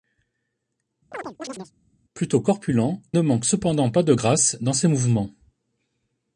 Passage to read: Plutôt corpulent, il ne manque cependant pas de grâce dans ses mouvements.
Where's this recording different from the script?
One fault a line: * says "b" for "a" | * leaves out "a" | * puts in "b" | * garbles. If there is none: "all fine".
* leaves out "il"